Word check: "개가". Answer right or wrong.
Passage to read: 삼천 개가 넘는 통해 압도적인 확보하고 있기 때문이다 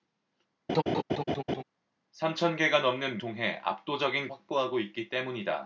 right